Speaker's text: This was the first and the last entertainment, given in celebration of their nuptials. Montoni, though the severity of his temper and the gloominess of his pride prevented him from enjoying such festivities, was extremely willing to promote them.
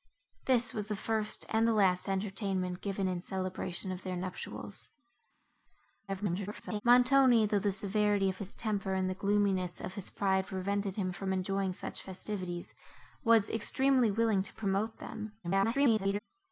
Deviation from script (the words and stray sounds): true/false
true